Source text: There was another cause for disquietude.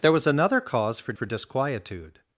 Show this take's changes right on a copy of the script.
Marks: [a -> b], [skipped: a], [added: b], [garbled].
There was another cause for [added: for] disquietude.